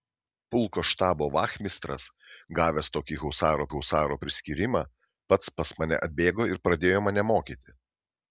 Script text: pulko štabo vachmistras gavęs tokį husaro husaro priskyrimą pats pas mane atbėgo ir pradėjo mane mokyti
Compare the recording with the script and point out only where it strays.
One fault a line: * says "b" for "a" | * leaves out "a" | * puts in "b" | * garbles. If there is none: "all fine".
all fine